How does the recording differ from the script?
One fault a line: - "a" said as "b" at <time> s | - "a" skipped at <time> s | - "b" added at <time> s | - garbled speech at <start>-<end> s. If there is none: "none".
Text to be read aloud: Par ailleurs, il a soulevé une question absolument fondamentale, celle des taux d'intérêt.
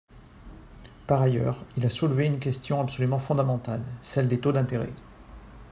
none